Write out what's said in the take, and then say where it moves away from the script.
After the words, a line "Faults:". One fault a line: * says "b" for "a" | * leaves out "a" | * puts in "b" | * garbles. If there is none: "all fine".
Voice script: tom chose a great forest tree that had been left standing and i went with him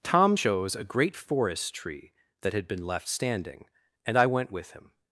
tom chose a great forest tree that had been left standing and i went with him
Faults:
all fine